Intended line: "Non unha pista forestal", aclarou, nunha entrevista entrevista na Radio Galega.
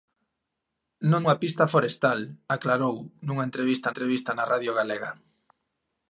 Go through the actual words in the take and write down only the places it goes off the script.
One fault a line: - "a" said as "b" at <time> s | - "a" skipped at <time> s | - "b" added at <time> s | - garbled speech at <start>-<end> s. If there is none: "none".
none